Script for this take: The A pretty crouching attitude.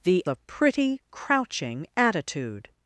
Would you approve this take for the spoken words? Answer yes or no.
yes